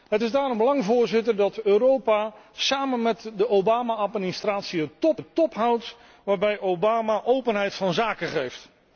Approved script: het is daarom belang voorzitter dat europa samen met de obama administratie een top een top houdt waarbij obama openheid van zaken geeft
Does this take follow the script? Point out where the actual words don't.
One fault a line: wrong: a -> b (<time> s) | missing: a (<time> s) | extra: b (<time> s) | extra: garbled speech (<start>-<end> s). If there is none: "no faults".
no faults